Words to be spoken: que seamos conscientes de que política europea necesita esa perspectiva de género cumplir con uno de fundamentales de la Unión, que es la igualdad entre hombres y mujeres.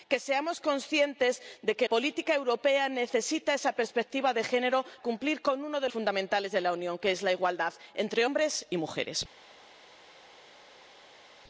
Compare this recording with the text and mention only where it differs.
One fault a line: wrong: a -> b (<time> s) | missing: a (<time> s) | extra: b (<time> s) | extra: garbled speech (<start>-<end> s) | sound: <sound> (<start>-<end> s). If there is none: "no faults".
no faults